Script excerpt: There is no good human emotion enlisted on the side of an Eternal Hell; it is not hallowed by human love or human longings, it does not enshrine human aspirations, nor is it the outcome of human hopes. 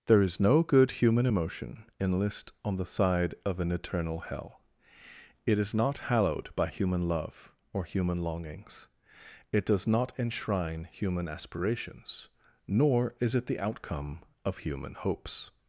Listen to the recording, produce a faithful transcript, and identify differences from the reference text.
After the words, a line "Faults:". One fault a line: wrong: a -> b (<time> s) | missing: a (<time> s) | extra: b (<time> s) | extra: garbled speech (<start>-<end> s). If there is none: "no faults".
There is no good human emotion enlist on the side of an Eternal Hell; it is not hallowed by human love or human longings, it does not enshrine human aspirations, nor is it the outcome of human hopes.
Faults:
wrong: enlisted -> enlist (2.0 s)